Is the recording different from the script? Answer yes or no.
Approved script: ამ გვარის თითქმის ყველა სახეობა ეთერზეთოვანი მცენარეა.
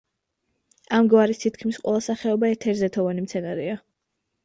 no